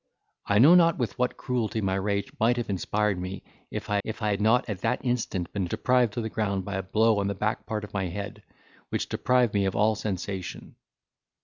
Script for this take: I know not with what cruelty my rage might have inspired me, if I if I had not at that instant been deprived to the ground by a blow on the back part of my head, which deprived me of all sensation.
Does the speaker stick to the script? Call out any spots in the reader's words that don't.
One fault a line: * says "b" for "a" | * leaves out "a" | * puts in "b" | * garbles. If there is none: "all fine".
all fine